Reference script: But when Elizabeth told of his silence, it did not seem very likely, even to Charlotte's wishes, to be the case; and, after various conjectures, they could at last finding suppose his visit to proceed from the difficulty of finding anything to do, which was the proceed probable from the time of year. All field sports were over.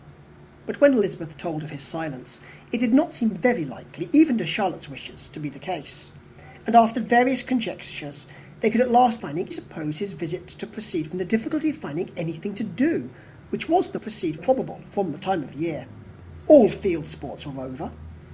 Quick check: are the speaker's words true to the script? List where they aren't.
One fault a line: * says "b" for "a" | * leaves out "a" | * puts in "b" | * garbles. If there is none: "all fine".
all fine